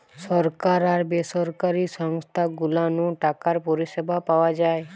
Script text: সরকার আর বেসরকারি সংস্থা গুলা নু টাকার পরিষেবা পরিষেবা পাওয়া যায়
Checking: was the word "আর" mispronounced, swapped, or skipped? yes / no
no